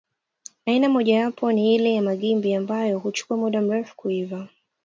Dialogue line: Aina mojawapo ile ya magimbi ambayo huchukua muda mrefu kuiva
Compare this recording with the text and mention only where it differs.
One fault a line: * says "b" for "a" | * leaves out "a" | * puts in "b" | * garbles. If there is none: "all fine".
* puts in "ni"